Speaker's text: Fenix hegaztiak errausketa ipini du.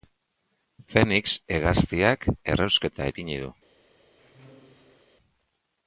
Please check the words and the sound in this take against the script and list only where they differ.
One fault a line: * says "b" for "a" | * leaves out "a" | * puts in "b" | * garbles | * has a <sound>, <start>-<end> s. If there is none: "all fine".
* has a squeak, 4.2-5.0 s